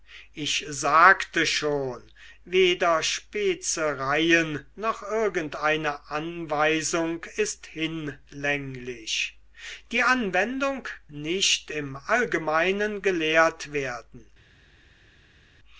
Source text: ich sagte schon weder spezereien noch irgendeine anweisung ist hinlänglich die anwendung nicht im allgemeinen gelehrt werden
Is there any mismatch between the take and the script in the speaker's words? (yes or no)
no